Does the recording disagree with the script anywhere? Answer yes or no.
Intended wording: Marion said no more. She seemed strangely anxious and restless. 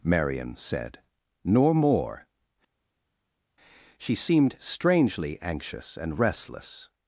yes